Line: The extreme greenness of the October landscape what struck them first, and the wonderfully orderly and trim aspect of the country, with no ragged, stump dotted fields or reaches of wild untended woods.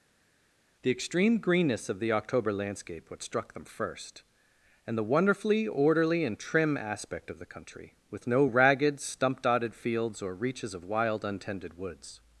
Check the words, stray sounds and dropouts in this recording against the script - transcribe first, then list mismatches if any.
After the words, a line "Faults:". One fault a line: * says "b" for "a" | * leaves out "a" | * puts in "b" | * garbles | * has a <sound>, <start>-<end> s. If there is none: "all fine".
The extreme greenness of the October landscape what struck them first, and the wonderfully orderly and trim aspect of the country, with no ragged, stump dotted fields or reaches of wild untended woods.
Faults:
all fine